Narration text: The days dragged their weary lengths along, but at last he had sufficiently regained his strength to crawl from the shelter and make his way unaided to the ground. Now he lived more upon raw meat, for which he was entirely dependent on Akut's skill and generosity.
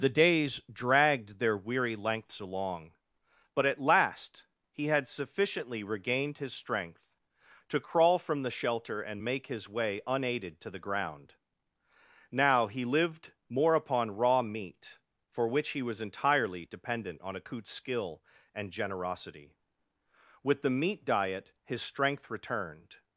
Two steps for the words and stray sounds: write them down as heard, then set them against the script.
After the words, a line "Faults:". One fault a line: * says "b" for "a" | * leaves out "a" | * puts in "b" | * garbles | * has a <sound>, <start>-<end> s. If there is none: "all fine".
The days dragged their weary lengths along, but at last he had sufficiently regained his strength to crawl from the shelter and make his way unaided to the ground. Now he lived more upon raw meat, for which he was entirely dependent on Akut's skill and generosity. With the meat diet his strength returned
Faults:
* puts in "With the meat diet his strength returned"